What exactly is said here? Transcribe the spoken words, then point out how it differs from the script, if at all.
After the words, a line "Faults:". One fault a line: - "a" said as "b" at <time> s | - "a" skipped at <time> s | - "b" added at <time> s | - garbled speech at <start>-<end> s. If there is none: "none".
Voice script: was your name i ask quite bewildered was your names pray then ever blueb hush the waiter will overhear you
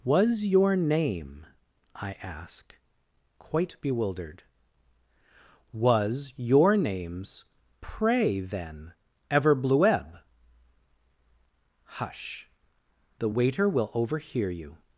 was your name i ask quite bewildered was your names pray then ever blueb hush the waiter will overhear you
Faults:
none